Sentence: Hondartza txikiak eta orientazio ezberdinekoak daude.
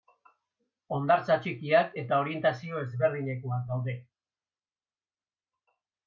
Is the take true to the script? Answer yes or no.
yes